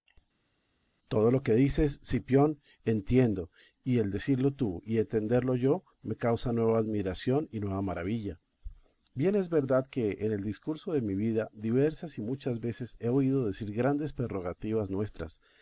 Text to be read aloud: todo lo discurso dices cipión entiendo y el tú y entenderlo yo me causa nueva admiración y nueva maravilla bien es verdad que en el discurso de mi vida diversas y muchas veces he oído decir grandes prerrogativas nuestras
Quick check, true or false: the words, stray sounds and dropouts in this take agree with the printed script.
false